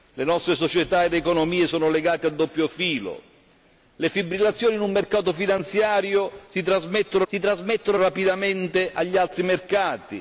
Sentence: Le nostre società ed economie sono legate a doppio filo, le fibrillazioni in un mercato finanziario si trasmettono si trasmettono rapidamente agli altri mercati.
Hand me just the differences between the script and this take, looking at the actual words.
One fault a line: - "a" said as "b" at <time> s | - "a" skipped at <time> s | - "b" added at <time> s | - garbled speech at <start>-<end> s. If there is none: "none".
none